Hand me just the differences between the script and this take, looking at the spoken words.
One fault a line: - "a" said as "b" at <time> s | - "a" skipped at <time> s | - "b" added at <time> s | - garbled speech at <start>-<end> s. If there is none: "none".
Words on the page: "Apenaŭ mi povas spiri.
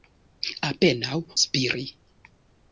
- "mi povas" skipped at 1.2 s